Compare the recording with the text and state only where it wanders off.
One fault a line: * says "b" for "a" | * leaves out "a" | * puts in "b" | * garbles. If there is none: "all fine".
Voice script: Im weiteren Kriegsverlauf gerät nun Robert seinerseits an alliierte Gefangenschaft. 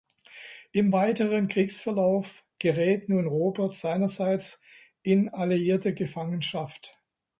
* says "in" for "an"